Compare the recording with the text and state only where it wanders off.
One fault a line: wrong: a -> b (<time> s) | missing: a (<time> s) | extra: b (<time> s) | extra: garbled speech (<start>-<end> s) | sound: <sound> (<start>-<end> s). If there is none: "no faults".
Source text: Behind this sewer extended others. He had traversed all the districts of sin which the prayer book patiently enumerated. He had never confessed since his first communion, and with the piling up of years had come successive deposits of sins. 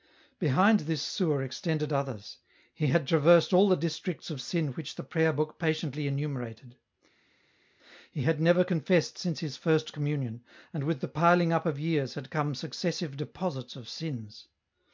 no faults